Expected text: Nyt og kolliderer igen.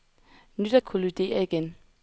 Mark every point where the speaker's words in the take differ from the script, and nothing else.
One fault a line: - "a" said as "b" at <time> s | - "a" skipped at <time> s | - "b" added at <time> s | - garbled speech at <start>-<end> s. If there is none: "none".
none